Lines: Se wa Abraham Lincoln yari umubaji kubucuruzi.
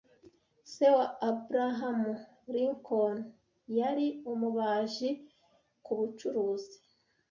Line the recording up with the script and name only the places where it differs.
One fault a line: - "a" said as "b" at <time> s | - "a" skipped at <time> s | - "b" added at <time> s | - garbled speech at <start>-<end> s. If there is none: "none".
none